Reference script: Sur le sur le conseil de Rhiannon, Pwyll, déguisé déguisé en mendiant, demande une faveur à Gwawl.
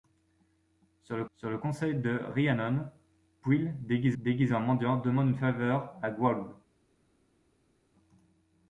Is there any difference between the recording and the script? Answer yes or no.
no